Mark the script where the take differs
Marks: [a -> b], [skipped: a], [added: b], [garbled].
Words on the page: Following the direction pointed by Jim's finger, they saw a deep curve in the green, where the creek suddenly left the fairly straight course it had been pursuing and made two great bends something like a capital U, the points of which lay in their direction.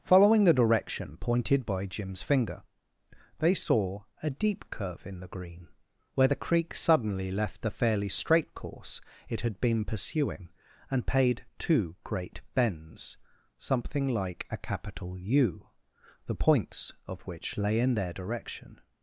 Following the direction pointed by Jim's finger, they saw a deep curve in the green, where the creek suddenly left the fairly straight course it had been pursuing and [made -> paid] two great bends something like a capital U, the points of which lay in their direction.